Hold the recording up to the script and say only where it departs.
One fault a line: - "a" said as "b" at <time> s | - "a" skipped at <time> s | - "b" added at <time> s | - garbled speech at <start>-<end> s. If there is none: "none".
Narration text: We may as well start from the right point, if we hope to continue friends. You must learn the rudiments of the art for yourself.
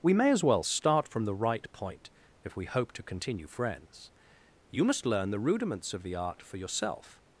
none